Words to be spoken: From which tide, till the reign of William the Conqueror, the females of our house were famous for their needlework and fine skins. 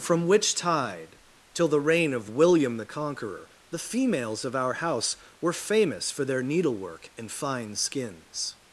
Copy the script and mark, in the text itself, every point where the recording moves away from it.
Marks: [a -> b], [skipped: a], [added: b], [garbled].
From which tide, till the reign of William the Conqueror, the females of our house were famous for their needlework and fine skins.